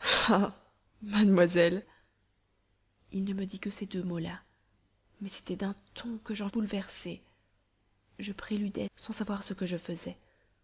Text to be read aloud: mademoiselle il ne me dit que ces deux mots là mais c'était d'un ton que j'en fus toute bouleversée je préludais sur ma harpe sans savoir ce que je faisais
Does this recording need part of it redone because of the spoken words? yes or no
yes